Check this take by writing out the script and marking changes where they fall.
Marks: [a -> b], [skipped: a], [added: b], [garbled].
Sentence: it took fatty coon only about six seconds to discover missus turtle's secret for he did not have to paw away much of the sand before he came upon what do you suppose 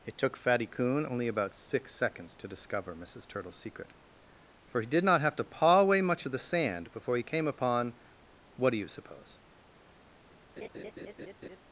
it took fatty coon only about six seconds to discover missus turtle's secret for he did not have to paw away much of the sand before he came upon what do you suppose